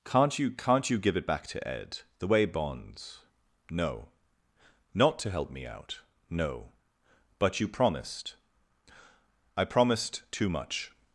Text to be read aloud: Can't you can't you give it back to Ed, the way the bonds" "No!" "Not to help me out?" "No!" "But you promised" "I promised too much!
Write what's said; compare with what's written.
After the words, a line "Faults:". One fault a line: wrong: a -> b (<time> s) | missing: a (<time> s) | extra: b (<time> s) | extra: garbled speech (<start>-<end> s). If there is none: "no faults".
Can't you can't you give it back to Ed, the way bonds" "No!" "Not to help me out?" "No!" "But you promised" "I promised too much!
Faults:
missing: the (2.5 s)